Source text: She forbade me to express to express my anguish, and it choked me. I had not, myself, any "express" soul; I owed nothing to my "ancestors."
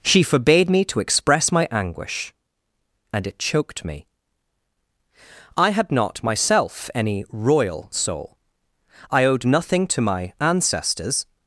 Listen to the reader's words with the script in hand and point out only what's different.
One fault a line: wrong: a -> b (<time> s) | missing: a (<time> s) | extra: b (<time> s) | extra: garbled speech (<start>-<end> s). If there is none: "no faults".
missing: to express (1.5 s)
wrong: express -> royal (7.3 s)